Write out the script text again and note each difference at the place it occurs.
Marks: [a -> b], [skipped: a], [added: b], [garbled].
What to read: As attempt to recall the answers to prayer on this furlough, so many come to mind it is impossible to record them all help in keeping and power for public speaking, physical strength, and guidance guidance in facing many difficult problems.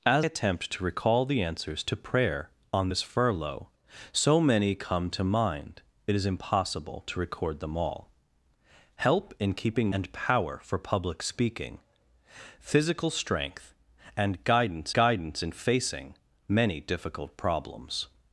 As attempt to recall the answers to prayer on this furlough, so many come to mind it is impossible to record them all help in keeping and power for public speaking, physical strength, and guidance guidance in facing many difficult problems.